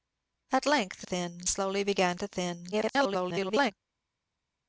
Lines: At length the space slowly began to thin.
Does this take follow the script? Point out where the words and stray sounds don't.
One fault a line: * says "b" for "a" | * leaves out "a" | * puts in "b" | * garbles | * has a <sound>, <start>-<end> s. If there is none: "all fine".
* says "thin" for "space"
* garbles